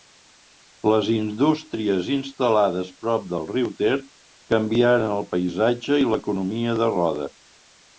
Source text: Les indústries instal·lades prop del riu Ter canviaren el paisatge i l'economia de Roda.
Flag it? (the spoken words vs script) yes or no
no